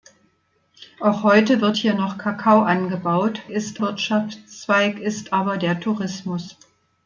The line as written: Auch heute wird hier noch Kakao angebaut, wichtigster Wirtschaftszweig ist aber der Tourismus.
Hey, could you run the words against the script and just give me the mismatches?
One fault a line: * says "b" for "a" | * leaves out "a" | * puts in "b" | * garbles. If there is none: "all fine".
* says "ist" for "wichtigster"